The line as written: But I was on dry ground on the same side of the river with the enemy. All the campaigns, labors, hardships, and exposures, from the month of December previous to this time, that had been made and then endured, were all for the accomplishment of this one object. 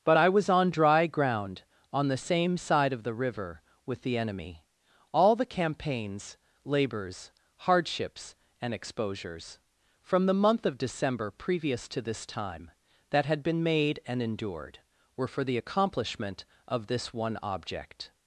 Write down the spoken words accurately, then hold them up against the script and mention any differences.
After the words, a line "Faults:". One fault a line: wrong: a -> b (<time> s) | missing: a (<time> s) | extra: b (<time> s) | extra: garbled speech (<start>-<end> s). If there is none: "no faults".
But I was on dry ground on the same side of the river with the enemy. All the campaigns, labors, hardships, and exposures, from the month of December previous to this time, that had been made and endured, were for the accomplishment of this one object.
Faults:
missing: then (14.2 s)
missing: all (15.3 s)